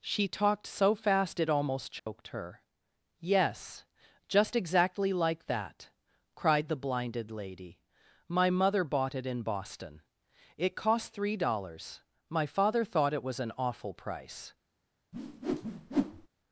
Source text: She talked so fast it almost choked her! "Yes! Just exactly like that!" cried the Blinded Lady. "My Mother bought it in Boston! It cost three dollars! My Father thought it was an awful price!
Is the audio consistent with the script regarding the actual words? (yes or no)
yes